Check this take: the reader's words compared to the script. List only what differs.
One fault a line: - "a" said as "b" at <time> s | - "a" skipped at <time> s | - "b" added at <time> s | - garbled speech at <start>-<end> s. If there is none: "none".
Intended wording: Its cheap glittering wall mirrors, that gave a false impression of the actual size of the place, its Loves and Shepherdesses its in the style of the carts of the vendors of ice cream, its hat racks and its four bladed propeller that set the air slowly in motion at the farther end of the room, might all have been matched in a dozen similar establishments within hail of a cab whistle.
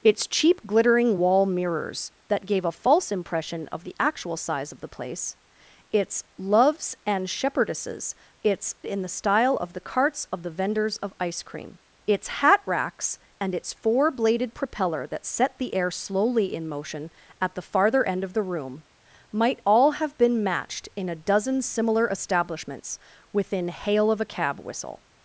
none